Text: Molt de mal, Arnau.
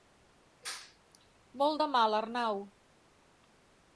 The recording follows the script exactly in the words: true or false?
true